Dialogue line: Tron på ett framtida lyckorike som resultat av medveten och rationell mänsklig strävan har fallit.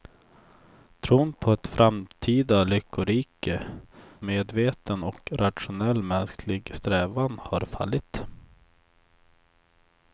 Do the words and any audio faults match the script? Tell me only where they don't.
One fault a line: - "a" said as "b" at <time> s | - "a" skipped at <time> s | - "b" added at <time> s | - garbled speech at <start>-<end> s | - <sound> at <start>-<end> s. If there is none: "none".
- "som resultat av" skipped at 3.6 s